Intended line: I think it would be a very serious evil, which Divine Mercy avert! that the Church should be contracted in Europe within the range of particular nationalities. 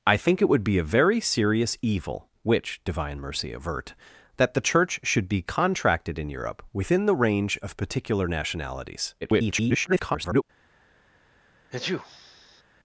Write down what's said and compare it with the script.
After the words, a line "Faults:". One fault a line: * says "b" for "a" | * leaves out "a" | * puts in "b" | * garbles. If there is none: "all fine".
I think it would be a very serious evil, which Divine Mercy avert! that the Church should be contracted in Europe within the range of particular nationalities. [garbled]
Faults:
* garbles